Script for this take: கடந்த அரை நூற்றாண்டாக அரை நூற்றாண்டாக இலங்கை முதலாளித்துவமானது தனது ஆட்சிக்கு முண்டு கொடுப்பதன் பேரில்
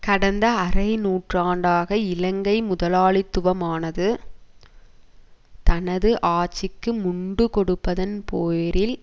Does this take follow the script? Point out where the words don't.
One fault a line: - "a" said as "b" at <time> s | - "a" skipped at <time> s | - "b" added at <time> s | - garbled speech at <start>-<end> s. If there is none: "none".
- "அரை நூற்றாண்டாக" skipped at 2.0 s